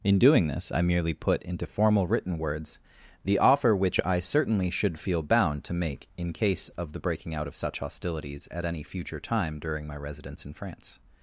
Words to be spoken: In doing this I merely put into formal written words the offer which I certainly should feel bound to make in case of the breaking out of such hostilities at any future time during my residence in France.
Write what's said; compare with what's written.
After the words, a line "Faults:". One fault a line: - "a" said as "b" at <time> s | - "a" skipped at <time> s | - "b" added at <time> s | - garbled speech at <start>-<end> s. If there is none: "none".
In doing this I merely put into formal written words the offer which I certainly should feel bound to make in case of the breaking out of such hostilities at any future time during my residence in France.
Faults:
none